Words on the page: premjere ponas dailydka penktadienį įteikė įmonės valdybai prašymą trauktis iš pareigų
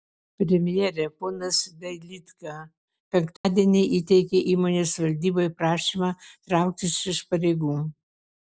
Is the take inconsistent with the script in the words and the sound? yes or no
yes